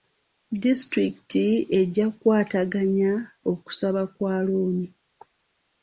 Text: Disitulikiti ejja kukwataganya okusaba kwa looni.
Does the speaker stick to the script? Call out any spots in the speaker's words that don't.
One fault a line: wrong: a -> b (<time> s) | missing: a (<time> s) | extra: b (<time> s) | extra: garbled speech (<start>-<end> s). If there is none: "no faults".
no faults